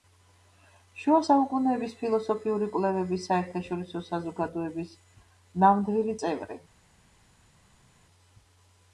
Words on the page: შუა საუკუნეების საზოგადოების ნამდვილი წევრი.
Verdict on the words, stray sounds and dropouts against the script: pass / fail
fail